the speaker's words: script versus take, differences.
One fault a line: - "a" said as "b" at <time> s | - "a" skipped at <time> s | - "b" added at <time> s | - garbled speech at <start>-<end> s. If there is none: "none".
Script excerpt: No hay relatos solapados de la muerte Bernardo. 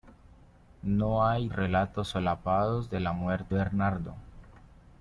none